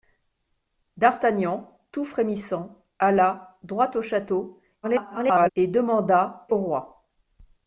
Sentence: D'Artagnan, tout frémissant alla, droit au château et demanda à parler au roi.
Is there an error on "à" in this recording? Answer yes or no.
yes